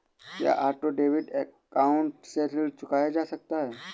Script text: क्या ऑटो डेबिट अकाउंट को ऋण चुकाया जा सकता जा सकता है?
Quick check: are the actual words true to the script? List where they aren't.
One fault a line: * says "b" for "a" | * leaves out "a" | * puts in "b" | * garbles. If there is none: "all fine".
* says "से" for "को"
* leaves out "जा सकता"